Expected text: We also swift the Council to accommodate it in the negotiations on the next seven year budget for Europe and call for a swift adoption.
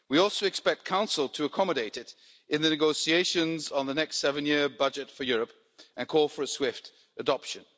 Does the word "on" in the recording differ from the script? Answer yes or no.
no